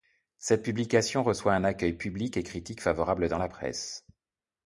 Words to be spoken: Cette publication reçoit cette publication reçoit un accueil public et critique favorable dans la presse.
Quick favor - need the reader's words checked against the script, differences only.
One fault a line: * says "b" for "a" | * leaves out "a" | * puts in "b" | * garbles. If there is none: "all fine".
* leaves out "cette publication reçoit"